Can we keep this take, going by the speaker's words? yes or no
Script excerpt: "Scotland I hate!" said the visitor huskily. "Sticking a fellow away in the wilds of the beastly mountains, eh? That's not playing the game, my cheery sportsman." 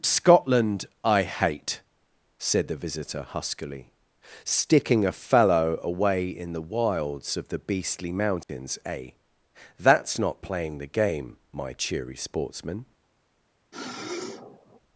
yes